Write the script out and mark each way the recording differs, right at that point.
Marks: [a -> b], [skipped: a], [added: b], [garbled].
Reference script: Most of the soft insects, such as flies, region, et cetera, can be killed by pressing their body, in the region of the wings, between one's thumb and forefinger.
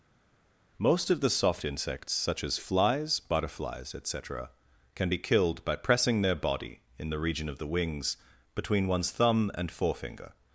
Most of the soft insects, such as flies, [region, -> butterflies] et cetera, can be killed by pressing their body, in the region of the wings, between one's thumb and forefinger.